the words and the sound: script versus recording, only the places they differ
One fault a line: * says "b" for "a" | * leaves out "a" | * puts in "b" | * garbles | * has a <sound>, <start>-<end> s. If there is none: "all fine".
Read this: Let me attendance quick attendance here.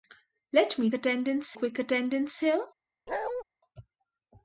* has a bark, 3.1-3.4 s